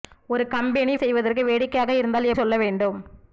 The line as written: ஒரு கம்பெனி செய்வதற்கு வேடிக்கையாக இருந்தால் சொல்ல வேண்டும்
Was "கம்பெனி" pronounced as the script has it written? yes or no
yes